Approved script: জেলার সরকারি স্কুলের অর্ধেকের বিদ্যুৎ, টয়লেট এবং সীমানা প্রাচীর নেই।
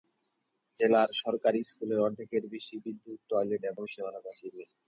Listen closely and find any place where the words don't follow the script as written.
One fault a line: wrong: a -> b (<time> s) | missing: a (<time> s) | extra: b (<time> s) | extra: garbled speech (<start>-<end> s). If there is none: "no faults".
extra: বেশি (2.5 s)